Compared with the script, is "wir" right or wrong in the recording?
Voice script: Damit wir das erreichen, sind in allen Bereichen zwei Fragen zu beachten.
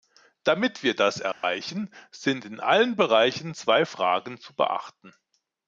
right